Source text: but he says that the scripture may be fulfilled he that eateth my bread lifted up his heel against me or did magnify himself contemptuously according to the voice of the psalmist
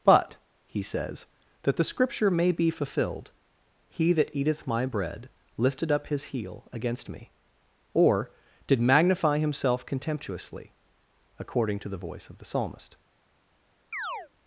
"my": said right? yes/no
yes